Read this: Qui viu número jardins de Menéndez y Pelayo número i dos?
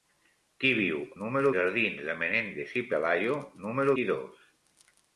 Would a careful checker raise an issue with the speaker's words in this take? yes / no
no